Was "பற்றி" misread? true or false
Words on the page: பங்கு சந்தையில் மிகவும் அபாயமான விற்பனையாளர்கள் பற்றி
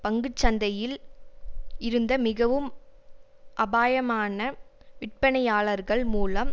true